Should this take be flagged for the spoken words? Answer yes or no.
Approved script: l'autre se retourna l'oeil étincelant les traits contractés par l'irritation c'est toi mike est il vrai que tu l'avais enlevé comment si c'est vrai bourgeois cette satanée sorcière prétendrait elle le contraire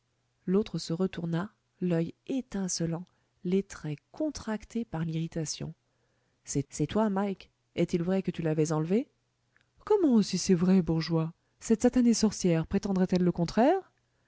yes